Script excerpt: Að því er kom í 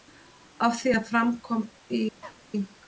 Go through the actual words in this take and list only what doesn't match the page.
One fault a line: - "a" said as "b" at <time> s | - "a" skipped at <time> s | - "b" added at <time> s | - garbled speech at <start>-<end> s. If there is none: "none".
- "fram" added at 1.1 s